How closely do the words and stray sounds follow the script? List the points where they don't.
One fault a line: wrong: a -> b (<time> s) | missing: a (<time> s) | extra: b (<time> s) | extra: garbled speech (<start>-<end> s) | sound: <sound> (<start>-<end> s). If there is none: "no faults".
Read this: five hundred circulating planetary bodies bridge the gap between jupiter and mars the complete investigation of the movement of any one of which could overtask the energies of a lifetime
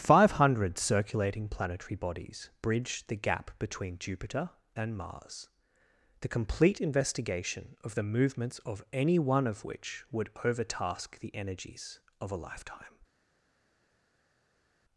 wrong: movement -> movements (8.0 s)
wrong: could -> would (10.1 s)